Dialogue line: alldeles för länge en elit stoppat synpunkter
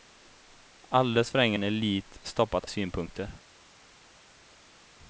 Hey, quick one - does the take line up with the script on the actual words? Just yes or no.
yes